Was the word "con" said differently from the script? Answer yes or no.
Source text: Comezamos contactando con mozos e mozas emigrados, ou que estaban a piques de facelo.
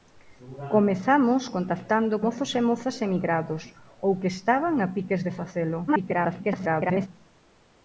yes